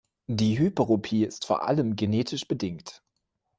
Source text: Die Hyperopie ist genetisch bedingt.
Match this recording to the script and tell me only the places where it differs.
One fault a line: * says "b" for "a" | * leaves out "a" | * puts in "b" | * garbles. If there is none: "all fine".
* puts in "vor allem"